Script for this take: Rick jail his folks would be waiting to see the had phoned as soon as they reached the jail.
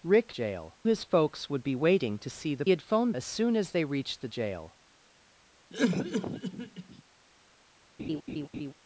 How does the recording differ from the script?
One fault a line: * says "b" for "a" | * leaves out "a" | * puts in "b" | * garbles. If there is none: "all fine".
all fine